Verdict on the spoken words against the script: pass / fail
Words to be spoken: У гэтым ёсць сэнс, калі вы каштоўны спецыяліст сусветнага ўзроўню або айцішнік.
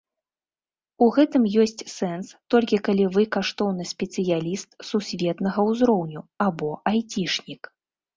fail